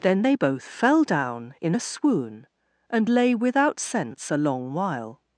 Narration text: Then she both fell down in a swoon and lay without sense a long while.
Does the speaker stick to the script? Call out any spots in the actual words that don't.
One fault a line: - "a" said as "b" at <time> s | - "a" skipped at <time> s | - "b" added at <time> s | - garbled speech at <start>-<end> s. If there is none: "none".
- "she" said as "they" at 0.2 s